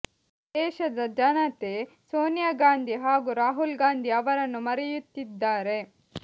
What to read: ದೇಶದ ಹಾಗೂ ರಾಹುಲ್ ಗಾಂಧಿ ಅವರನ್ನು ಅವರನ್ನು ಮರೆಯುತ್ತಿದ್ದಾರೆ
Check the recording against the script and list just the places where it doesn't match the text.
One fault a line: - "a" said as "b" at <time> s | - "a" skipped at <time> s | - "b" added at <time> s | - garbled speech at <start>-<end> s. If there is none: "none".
- "ಜನತೆ ಸೋನಿಯಾ ಗಾಂಧಿ" added at 1.2 s
- "ಅವರನ್ನು" skipped at 4.6 s